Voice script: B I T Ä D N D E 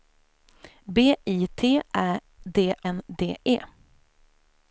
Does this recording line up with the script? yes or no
yes